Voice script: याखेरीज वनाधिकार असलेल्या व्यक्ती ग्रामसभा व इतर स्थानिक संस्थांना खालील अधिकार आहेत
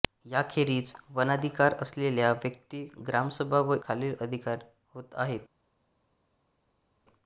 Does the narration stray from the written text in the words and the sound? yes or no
yes